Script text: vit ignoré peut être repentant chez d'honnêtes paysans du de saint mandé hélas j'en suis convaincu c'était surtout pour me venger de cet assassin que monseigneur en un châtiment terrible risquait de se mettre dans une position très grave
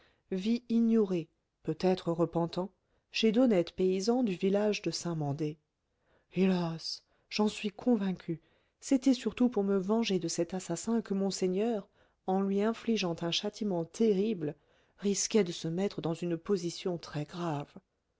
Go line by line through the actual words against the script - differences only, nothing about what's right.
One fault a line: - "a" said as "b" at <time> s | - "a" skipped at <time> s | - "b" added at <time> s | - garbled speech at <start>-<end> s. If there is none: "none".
- "village" added at 4.3 s
- "lui infligeant" added at 12.4 s